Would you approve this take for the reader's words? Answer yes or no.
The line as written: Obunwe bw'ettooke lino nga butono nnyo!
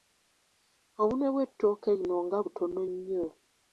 yes